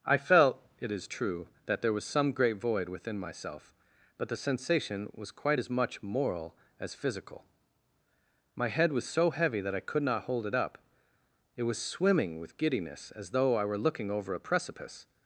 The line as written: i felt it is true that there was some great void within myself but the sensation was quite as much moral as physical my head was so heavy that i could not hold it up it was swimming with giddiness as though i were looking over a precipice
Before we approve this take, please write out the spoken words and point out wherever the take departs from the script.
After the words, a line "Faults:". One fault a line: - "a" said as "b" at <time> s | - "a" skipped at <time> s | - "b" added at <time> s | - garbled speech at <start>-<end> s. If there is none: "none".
i felt it is true that there was some great void within myself but the sensation was quite as much moral as physical my head was so heavy that i could not hold it up it was swimming with giddiness as though i were looking over a precipice
Faults:
none